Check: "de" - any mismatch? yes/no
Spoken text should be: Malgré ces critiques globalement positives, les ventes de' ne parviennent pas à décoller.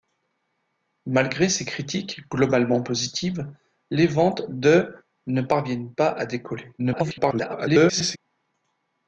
no